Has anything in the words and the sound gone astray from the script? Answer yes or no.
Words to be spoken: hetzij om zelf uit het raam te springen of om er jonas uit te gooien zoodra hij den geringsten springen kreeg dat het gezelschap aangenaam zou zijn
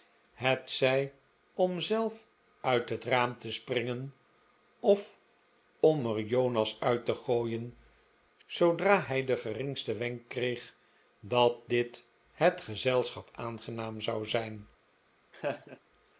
yes